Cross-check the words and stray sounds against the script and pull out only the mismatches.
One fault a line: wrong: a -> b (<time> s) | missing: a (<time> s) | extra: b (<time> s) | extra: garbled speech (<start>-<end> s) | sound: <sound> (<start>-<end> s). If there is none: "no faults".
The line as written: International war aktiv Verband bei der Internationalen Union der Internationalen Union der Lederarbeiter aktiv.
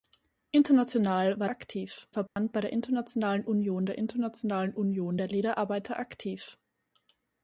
sound: dropout (2.3-2.4 s)